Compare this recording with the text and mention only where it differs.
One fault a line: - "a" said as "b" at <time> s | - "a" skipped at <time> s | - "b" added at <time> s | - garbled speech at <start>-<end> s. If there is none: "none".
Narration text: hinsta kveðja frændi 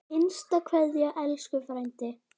- "elsku" added at 1.2 s